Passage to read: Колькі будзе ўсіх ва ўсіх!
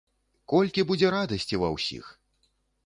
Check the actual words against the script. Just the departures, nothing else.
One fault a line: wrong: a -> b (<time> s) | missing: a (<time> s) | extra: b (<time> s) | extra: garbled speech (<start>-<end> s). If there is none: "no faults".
wrong: ўсіх -> радасці (1.2 s)